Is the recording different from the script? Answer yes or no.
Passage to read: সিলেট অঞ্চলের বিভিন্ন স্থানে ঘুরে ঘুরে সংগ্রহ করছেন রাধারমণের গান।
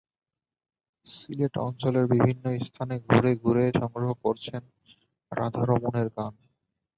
no